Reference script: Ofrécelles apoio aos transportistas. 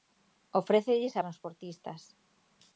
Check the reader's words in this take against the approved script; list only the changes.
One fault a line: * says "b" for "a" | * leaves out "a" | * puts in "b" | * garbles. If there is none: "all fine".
* leaves out "apoio aos"